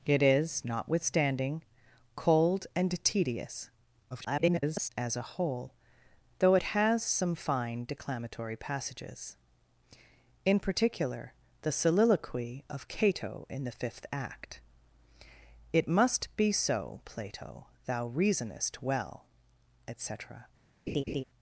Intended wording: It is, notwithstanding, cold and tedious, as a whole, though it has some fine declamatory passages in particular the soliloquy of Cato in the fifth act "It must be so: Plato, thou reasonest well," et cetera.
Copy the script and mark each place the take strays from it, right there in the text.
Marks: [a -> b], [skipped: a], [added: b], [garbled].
It is, notwithstanding, cold and tedious, [garbled] as a whole, though it has some fine declamatory passages in particular the soliloquy of Cato in the fifth act "It must be so: Plato, thou reasonest well," et cetera.